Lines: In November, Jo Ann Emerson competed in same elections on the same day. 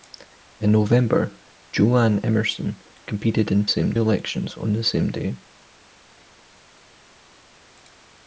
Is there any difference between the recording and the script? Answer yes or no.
no